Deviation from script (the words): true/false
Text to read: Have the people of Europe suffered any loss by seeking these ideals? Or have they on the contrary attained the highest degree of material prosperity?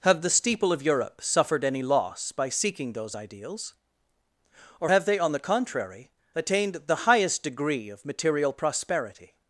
true